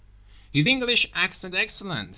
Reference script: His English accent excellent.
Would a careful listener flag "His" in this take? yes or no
no